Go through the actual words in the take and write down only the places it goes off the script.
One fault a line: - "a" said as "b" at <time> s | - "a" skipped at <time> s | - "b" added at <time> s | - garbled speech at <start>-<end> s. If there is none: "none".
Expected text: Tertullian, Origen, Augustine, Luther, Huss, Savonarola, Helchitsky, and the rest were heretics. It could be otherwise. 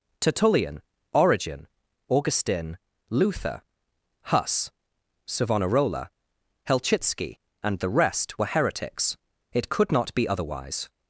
- "not" added at 9.9 s